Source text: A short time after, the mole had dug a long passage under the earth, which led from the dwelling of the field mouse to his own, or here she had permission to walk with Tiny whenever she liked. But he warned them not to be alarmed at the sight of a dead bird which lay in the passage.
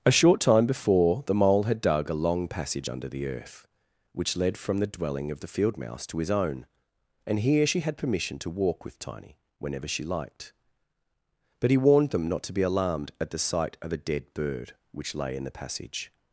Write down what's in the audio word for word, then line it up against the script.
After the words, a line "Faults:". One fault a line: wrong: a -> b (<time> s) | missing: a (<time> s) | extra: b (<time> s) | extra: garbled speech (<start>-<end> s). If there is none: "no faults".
A short time before, the mole had dug a long passage under the earth, which led from the dwelling of the field mouse to his own, and here she had permission to walk with Tiny whenever she liked. But he warned them not to be alarmed at the sight of a dead bird which lay in the passage.
Faults:
wrong: after -> before (0.7 s)
wrong: or -> and (7.3 s)